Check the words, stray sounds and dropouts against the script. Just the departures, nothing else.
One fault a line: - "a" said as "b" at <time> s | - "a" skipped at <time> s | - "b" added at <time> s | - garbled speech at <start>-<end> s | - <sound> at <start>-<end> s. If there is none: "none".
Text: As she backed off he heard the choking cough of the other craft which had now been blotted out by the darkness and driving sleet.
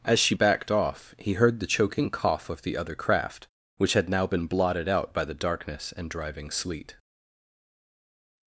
none